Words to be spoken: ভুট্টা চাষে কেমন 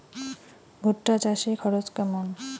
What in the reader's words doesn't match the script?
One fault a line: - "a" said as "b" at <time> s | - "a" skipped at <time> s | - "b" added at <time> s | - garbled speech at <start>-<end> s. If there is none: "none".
- "খরচ" added at 1.6 s